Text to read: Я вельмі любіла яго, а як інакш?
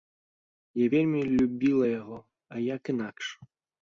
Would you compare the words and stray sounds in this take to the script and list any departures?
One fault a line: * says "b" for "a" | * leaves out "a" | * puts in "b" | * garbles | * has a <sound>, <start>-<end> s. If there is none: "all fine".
all fine